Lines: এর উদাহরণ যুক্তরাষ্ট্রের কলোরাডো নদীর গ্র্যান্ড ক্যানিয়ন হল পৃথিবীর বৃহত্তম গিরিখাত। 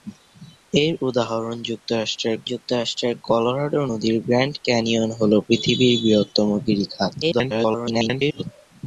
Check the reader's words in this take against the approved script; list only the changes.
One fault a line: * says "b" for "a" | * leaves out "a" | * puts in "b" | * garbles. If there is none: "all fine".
* puts in "যুক্তরাষ্ট্রের"
* garbles